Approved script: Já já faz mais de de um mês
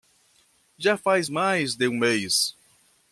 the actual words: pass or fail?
fail